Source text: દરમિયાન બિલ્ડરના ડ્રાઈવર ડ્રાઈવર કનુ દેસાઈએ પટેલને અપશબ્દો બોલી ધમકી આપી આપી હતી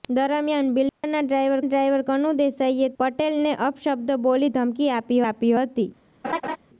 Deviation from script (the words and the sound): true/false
true